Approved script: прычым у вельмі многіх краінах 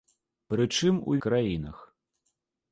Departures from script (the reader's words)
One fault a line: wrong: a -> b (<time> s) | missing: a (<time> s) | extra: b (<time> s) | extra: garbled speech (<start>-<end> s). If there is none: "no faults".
missing: вельмі многіх (1.2 s)